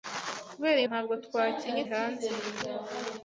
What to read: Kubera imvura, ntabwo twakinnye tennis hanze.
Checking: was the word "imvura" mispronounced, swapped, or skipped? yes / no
yes